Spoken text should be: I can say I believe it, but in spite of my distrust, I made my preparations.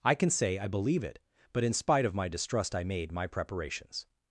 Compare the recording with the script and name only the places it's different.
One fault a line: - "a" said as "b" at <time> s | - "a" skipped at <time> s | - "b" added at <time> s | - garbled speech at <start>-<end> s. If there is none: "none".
none